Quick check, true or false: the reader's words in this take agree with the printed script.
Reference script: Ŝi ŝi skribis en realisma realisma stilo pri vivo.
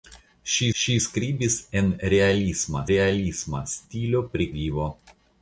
true